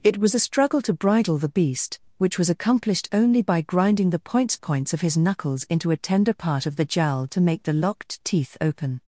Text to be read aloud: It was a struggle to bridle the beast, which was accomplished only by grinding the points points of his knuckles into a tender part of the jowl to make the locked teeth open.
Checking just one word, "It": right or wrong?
right